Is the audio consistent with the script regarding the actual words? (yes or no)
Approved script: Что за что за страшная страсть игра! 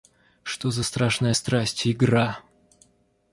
no